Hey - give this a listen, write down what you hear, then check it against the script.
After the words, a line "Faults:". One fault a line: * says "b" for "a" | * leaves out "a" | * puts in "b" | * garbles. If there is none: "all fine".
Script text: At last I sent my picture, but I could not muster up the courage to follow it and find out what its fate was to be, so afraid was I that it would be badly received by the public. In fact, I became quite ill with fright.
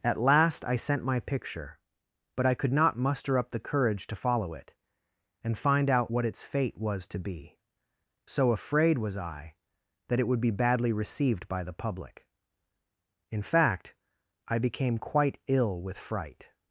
At last I sent my picture, but I could not muster up the courage to follow it and find out what its fate was to be, so afraid was I that it would be badly received by the public. In fact, I became quite ill with fright.
Faults:
all fine